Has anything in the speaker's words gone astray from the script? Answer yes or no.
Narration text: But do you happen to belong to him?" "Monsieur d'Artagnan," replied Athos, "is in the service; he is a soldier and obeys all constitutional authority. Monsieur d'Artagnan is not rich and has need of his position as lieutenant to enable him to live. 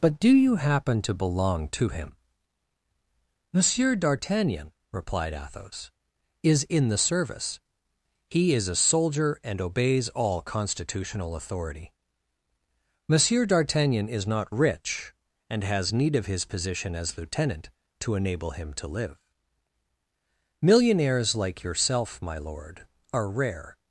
yes